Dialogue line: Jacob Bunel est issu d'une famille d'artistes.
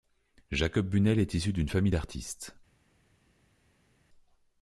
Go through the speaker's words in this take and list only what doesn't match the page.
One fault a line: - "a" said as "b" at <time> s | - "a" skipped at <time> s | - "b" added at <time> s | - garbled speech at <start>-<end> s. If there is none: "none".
none